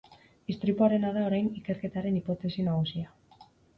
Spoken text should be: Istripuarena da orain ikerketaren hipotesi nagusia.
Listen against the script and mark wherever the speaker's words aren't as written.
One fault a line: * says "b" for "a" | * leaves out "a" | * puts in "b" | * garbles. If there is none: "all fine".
all fine